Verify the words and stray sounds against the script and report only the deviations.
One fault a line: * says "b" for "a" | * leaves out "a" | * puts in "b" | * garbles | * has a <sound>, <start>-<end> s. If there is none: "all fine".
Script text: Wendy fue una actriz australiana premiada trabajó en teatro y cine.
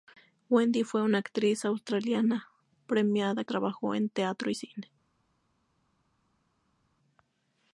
all fine